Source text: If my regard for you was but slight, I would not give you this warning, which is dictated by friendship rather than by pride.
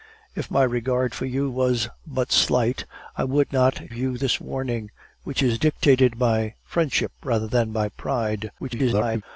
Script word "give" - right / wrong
wrong